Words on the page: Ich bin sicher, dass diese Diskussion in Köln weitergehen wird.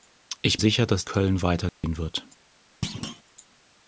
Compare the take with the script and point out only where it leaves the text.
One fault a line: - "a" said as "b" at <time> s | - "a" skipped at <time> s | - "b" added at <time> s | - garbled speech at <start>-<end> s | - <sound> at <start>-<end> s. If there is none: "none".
- "bin" skipped at 0.6 s
- "diese Diskussion in" skipped at 1.0 s
- dropout at 1.7-1.8 s
- thud at 2.8-3.2 s